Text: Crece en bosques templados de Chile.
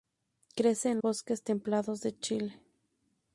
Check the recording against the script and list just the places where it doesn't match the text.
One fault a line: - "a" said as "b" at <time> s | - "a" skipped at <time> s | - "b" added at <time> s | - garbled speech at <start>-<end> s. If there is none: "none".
none